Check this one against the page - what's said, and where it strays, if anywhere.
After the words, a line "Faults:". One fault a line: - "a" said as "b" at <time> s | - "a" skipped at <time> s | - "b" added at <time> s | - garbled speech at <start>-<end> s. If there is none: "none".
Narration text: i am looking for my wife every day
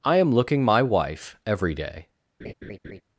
i am looking my wife every day
Faults:
- "for" skipped at 0.6 s